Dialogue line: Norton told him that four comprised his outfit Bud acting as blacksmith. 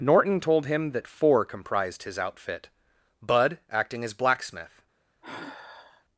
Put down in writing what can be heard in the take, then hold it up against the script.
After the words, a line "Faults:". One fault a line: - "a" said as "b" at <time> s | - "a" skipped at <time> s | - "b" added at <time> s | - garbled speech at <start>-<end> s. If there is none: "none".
Norton told him that four comprised his outfit Bud acting as blacksmith.
Faults:
none